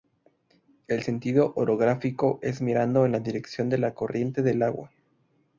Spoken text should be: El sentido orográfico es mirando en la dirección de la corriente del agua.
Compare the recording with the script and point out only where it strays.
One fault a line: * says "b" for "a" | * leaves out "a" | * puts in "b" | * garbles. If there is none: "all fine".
all fine